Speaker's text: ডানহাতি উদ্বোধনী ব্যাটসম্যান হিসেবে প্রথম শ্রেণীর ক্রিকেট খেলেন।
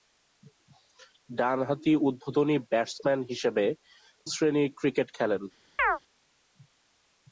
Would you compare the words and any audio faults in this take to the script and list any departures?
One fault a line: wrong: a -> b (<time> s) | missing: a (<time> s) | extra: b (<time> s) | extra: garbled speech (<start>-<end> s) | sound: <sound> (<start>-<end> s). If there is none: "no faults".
missing: প্রথম (3.6 s)
sound: chirp (5.8-6.0 s)